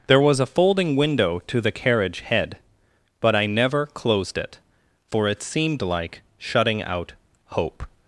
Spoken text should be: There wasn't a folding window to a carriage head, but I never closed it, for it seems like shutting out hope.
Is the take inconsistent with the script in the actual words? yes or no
yes